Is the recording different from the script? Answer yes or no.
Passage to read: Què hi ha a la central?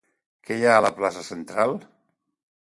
yes